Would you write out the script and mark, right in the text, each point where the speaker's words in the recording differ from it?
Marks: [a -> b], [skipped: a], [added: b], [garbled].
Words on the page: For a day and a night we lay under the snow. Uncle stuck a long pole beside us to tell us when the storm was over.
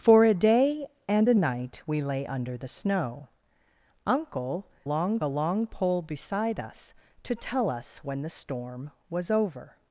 For a day and a night we lay under the snow. Uncle [stuck -> long] a long pole beside us to tell us when the storm was over.